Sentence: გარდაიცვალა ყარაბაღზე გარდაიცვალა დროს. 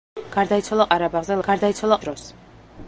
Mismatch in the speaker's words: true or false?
false